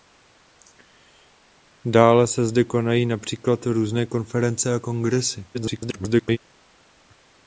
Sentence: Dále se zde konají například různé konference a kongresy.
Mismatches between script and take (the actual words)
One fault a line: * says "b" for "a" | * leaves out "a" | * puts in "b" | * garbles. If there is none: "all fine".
* garbles